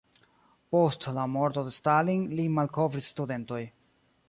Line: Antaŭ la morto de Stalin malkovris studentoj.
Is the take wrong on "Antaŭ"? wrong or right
wrong